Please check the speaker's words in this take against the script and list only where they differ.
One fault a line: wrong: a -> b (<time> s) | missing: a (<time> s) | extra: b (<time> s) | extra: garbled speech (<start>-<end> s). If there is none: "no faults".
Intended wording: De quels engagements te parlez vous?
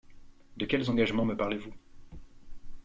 wrong: te -> me (1.2 s)